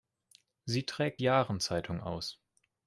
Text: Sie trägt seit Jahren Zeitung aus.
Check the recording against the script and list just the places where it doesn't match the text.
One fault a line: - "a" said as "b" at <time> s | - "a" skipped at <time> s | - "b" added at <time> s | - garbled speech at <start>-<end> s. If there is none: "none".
- "seit" skipped at 1.2 s